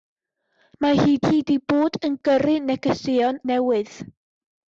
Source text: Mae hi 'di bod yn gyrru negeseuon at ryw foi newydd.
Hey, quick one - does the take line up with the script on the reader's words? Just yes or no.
no